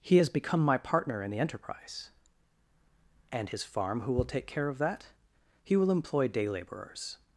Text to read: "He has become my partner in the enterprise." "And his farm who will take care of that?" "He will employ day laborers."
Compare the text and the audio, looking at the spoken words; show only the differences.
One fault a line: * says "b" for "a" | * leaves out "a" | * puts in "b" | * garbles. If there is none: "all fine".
all fine